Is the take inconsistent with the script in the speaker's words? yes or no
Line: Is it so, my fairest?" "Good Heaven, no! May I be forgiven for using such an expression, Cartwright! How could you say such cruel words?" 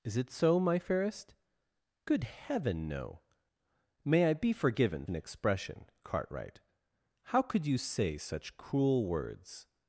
yes